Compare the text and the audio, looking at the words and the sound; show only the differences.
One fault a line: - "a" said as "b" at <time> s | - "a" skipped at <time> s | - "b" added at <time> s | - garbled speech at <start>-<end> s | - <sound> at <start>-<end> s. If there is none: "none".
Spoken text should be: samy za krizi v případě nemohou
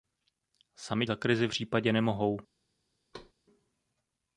- thud at 3.1-3.3 s